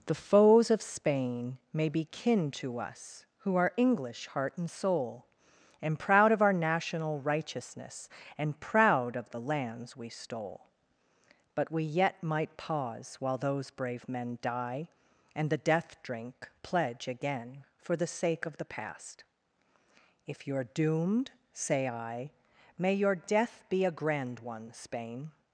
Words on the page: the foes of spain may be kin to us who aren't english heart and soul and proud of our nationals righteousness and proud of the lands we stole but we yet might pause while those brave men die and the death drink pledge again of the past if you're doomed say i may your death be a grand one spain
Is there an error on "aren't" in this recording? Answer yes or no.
yes